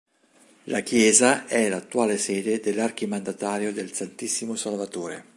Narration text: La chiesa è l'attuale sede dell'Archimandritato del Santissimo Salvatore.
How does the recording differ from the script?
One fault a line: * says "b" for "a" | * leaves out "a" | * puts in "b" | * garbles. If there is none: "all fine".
all fine